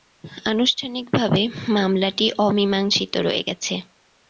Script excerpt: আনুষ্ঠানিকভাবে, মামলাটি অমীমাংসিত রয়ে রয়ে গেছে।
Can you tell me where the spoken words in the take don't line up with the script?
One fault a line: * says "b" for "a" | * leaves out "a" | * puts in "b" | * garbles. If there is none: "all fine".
* leaves out "রয়ে"